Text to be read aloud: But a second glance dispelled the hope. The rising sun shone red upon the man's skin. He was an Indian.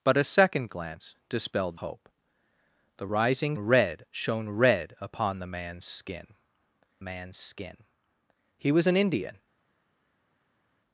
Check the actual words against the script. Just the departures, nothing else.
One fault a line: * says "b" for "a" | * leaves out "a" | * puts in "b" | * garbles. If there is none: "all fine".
* leaves out "the"
* says "red" for "sun"
* puts in "man's skin"